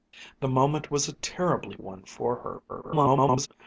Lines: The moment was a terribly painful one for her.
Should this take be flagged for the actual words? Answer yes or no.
yes